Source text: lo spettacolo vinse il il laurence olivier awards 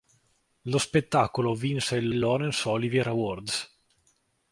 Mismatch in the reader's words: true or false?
false